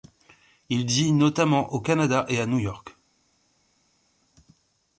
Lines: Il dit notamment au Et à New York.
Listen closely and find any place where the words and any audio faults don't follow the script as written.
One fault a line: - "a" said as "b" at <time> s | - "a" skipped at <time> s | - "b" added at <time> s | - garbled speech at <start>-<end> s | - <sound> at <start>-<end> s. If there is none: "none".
- "Canada" added at 1.8 s